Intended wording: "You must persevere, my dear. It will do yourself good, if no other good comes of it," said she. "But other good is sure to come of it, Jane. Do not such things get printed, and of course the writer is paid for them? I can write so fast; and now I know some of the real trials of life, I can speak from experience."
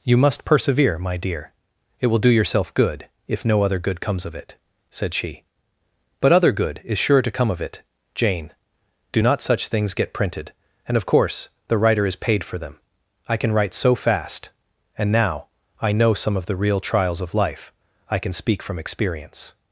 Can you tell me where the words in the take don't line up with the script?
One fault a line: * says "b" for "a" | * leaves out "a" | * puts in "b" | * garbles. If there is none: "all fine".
all fine